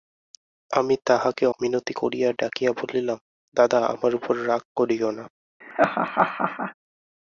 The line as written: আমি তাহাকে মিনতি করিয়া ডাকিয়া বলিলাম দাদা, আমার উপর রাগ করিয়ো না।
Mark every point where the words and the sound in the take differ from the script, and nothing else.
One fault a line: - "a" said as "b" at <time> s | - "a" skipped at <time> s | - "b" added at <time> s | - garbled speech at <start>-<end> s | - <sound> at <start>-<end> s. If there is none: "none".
- laugh at 5.6-6.7 s